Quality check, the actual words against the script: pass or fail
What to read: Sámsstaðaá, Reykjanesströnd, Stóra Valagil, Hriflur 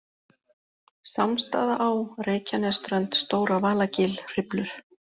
pass